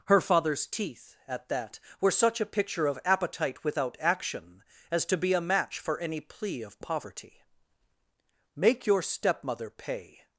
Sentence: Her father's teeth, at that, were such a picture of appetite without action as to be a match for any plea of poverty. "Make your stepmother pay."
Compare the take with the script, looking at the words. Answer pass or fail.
pass